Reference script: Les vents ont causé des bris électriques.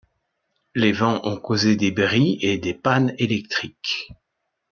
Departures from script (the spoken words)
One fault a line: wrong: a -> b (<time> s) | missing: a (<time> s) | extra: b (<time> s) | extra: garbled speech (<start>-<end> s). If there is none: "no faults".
extra: et des pannes (2.4 s)